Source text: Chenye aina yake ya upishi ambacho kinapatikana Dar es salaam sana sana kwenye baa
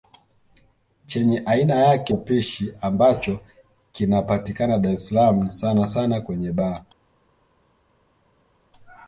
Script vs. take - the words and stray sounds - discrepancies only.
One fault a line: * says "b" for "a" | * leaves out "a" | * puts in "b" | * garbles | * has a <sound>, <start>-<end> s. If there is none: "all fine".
* leaves out "ya"